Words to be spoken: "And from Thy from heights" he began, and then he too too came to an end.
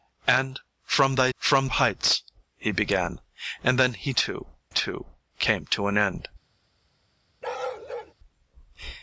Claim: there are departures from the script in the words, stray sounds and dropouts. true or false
true